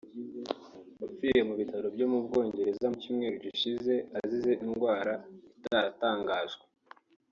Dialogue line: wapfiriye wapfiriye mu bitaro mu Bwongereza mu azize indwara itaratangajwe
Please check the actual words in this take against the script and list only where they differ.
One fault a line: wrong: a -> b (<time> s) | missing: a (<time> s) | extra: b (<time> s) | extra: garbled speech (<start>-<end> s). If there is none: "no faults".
missing: wapfiriye (1.4 s)
extra: byo (1.9 s)
extra: cyumweru gishize (3.0 s)